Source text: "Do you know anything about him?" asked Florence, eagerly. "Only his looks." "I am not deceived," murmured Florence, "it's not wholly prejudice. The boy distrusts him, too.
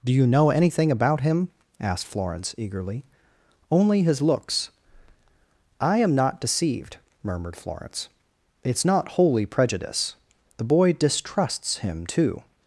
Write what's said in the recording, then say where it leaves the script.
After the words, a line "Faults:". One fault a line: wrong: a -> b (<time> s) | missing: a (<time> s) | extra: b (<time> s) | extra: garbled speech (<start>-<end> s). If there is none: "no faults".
"Do you know anything about him?" asked Florence, eagerly. "Only his looks." "I am not deceived," murmured Florence, "it's not wholly prejudice. The boy distrusts him, too.
Faults:
no faults